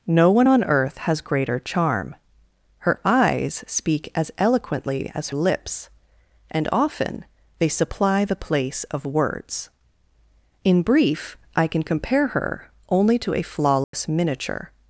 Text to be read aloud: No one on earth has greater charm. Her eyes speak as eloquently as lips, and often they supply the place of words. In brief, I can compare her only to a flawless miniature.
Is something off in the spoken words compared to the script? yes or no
no